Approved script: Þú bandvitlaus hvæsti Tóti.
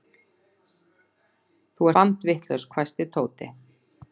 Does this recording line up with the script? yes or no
yes